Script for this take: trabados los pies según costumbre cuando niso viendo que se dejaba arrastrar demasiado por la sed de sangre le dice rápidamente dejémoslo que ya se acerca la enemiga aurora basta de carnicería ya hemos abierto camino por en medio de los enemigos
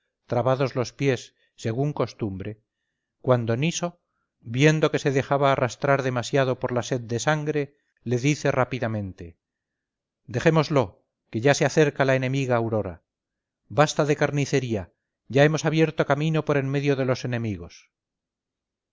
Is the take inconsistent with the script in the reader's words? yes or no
no